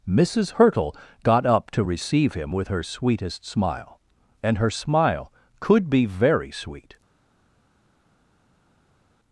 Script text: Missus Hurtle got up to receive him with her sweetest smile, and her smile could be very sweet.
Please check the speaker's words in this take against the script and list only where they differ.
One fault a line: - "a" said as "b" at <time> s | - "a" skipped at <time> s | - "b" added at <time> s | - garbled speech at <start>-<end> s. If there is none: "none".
none